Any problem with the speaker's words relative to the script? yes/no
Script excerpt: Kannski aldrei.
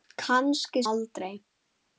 no